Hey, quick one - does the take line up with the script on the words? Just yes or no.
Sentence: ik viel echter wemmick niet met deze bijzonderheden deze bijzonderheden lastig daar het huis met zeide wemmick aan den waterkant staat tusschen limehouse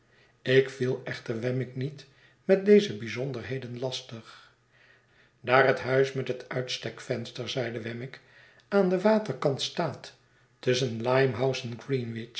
no